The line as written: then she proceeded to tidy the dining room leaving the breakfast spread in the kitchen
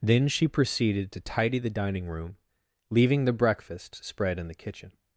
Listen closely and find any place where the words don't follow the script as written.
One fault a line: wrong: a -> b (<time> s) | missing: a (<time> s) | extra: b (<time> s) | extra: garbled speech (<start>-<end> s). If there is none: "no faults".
no faults